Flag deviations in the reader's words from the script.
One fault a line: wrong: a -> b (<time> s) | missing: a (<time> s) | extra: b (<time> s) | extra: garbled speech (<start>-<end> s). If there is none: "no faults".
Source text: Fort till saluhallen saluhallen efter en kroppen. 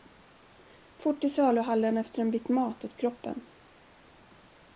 missing: saluhallen (2.0 s)
extra: bit mat åt (2.3 s)